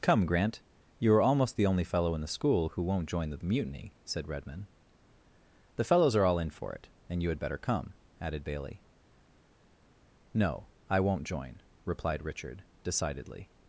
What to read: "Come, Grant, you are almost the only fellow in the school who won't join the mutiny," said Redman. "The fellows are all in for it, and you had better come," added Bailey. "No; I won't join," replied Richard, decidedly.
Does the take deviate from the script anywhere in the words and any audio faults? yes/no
no